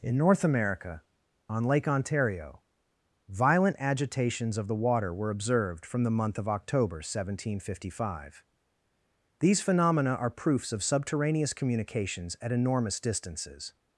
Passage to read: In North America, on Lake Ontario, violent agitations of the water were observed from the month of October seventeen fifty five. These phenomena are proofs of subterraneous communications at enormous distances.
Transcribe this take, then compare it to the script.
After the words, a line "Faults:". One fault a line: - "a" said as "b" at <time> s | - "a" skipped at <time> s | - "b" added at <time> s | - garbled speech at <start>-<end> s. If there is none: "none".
In North America, on Lake Ontario, violent agitations of the water were observed from the month of October seventeen fifty five. These phenomena are proofs of subterraneous communications at enormous distances.
Faults:
none